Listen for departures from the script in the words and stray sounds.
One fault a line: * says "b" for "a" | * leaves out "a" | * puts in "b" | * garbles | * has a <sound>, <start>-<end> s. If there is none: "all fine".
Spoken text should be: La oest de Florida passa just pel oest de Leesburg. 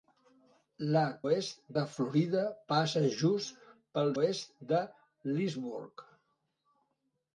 all fine